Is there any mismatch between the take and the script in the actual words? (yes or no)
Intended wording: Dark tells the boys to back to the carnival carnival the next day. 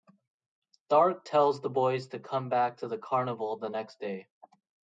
yes